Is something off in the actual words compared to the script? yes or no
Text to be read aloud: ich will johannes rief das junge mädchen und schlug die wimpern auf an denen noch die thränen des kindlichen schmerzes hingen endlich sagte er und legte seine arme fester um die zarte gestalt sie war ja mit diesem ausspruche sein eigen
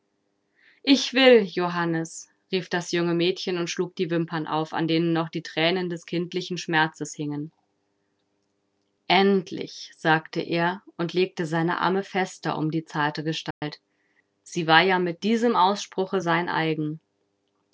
no